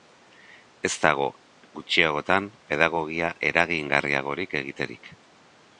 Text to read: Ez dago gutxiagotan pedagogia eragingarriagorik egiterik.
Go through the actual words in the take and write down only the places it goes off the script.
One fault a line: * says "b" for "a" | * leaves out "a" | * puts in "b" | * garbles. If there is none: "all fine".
all fine